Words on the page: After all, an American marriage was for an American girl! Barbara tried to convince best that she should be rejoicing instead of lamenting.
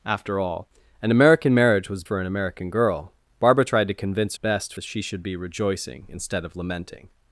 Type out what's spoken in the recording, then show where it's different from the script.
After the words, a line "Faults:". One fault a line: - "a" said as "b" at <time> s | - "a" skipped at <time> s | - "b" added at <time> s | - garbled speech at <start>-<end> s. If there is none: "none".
After all, an American marriage was for an American girl! Barbara tried to convince best that she should be rejoicing instead of lamenting.
Faults:
none